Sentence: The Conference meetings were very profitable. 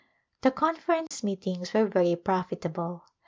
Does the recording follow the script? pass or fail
pass